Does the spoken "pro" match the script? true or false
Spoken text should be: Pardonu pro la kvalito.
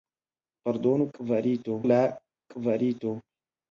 false